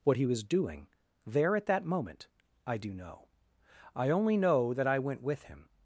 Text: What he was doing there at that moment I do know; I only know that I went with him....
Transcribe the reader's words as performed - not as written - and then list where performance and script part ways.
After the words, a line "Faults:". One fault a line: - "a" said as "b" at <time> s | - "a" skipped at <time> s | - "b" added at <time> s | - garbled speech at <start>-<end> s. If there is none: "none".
What he was doing there at that moment I do know; I only know that I went with him....
Faults:
none